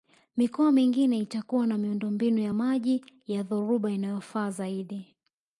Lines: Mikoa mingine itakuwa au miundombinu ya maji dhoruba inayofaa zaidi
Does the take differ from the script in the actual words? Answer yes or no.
yes